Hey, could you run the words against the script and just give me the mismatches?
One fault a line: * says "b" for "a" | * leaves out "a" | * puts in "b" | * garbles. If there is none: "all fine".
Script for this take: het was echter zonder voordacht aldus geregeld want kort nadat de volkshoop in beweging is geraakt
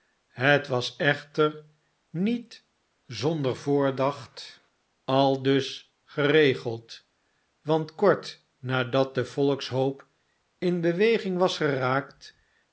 * puts in "niet"
* says "was" for "is"